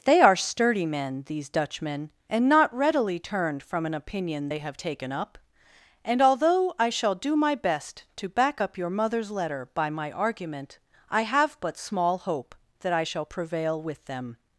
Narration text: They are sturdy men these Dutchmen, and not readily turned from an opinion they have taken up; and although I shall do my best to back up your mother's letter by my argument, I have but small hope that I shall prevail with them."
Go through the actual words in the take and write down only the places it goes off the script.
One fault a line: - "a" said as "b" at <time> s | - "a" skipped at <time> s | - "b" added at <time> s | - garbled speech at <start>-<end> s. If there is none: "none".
none